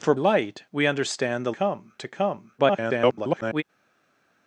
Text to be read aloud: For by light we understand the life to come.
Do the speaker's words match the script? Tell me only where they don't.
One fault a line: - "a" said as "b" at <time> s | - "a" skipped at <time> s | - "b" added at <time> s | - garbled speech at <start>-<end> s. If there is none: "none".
- "by" skipped at 0.1 s
- "life" said as "come" at 1.5 s
- garbled speech at 2.6-3.6 s